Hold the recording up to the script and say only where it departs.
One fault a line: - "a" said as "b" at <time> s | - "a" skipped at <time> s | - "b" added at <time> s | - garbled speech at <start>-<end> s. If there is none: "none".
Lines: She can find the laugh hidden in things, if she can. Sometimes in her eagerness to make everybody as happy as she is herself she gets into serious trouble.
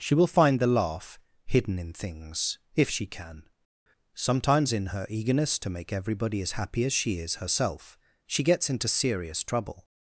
- "can" said as "will" at 0.1 s